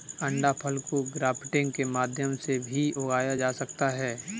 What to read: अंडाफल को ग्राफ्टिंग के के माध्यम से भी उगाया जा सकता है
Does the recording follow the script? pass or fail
fail